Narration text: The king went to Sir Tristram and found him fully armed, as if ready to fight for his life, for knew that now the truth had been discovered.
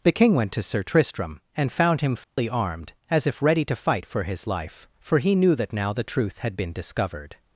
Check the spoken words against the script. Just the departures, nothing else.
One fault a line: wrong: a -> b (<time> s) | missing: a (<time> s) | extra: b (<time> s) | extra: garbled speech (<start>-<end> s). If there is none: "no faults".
extra: he (5.2 s)